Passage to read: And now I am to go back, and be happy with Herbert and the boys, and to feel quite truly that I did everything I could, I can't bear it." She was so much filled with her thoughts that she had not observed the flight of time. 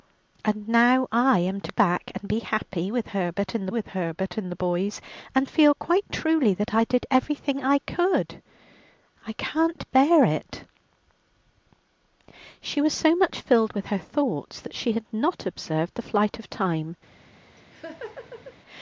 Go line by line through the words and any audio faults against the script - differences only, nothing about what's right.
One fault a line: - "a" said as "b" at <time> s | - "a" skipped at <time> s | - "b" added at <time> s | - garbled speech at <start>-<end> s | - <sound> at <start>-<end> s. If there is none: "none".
- "go" skipped at 1.7 s
- "with Herbert and" added at 3.7 s
- "to" skipped at 5.5 s
- laugh at 17.6-18.6 s